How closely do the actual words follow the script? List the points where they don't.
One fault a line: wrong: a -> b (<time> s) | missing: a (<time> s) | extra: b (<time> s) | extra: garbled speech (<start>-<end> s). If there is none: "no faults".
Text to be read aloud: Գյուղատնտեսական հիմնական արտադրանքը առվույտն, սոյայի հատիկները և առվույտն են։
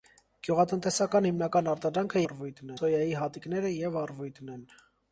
no faults